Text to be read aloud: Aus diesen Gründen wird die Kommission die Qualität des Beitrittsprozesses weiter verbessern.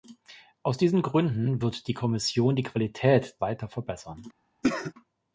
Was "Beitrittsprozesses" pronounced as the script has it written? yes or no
no